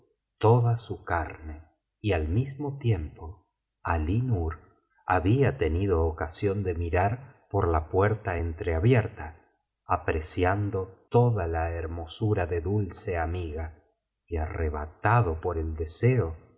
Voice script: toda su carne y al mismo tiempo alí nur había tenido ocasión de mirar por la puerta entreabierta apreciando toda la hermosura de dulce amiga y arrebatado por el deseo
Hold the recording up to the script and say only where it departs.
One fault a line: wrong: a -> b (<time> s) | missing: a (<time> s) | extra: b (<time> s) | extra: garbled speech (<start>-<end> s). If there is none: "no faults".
no faults